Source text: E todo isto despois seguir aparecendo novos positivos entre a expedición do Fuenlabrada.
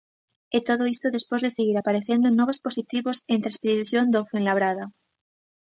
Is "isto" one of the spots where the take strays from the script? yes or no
no